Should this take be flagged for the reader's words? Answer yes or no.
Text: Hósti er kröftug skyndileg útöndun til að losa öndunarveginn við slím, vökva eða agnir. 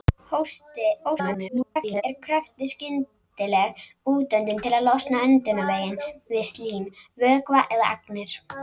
yes